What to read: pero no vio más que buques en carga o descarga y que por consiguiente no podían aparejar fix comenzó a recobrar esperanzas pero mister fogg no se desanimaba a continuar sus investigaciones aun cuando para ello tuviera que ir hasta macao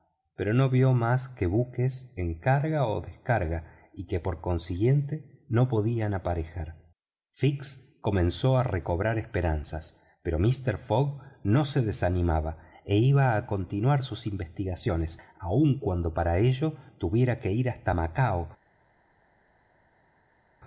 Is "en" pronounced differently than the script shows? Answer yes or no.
no